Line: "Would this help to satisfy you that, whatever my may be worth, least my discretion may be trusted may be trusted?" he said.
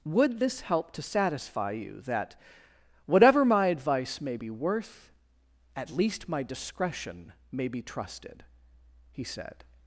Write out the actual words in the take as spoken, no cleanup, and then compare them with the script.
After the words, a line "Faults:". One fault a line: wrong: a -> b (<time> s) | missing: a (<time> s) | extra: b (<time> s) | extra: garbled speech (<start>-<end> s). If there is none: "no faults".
"Would this help to satisfy you that, whatever my advice may be worth, at least my discretion may be trusted?" he said.
Faults:
extra: advice (3.7 s)
extra: at (5.8 s)
missing: may be trusted (8.4 s)